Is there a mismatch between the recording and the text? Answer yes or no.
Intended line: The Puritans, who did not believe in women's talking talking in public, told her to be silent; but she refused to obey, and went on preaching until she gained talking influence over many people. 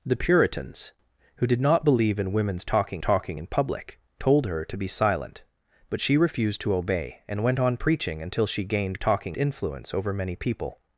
no